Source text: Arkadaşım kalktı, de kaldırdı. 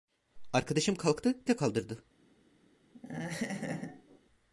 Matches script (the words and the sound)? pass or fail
fail